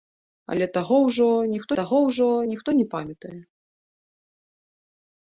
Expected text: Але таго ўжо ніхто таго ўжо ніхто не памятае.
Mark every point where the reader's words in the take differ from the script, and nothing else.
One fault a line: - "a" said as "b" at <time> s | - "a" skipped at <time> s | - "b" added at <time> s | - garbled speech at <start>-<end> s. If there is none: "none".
none